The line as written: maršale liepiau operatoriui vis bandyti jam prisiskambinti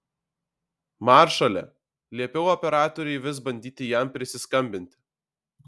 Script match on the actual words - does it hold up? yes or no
yes